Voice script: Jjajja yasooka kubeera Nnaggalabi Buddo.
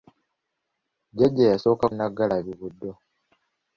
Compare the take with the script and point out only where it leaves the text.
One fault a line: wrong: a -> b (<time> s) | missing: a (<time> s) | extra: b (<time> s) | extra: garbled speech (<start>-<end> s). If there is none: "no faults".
missing: kubeera (1.9 s)